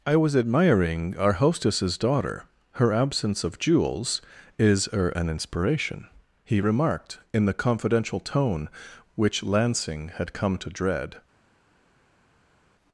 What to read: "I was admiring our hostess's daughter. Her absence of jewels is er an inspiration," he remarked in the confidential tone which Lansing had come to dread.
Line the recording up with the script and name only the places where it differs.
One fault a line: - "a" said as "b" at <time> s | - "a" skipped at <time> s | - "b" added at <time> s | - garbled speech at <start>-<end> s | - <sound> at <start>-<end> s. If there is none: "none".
none